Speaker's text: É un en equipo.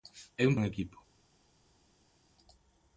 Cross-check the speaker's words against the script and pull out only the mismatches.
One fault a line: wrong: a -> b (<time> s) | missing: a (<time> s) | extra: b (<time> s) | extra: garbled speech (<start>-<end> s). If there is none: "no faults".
no faults